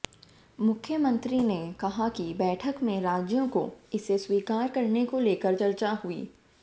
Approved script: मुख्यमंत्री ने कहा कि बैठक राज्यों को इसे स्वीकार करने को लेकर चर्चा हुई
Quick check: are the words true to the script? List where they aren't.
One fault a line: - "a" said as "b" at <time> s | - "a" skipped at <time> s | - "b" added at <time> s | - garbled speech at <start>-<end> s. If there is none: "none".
- "में" added at 2.8 s